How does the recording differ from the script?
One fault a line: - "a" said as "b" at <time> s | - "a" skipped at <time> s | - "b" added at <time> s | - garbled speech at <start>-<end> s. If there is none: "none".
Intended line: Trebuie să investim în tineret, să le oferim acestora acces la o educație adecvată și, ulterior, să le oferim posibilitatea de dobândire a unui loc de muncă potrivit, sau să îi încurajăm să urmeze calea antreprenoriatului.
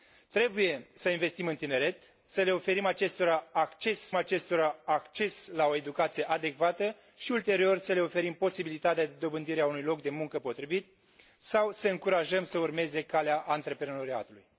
- "acestora acces" added at 4.1 s